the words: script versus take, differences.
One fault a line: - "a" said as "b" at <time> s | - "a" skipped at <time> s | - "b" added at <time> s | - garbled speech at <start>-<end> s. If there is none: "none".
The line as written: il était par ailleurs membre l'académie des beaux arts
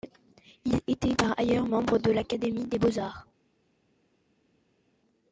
- "de" added at 2.0 s